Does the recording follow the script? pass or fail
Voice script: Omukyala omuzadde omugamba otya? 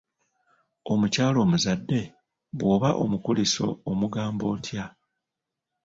fail